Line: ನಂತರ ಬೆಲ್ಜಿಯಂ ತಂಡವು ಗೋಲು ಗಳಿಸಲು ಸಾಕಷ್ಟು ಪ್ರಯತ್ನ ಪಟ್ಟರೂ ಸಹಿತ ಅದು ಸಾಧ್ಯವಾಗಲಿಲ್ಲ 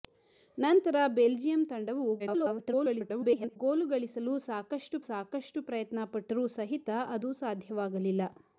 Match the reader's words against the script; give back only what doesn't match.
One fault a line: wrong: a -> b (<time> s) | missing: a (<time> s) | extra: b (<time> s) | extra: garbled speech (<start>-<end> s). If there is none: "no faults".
extra: garbled speech (2.2-3.6 s)
extra: ಸಾಕಷ್ಟು (5.1 s)